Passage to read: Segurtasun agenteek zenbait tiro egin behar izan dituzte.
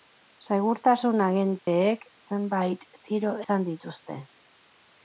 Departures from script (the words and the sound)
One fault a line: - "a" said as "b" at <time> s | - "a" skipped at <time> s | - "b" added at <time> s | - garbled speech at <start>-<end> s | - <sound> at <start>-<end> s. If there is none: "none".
- dropout at 1.6-1.7 s
- "egin behar" skipped at 3.4 s